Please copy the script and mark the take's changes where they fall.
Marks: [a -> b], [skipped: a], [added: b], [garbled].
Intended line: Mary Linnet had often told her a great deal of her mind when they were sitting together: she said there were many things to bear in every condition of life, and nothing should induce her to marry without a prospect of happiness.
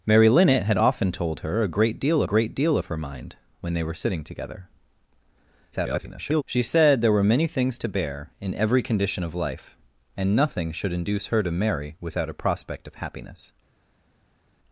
Mary Linnet had often told her a great deal [added: great deal] of her mind when they were sitting together: [garbled] she said there were many things to bear in every condition of life, and nothing should induce her to marry without a prospect of happiness.